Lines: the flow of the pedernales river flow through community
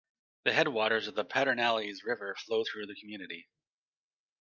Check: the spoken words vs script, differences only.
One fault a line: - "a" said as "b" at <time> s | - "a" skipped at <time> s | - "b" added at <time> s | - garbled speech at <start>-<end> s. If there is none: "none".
- "flow" said as "headwaters" at 0.5 s
- "the" added at 2.9 s